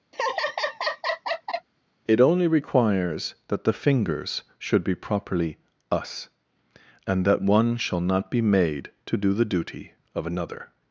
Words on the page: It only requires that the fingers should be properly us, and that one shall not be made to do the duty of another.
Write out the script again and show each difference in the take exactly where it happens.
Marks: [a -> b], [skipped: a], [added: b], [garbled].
It only requires that the fingers should be properly us, and that one shall not be made to do the duty of another.